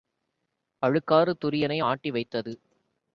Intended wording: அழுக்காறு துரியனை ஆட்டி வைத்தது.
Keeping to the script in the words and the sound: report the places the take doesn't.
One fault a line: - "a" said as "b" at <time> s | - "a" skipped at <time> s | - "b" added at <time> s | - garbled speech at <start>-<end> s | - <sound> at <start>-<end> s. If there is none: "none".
none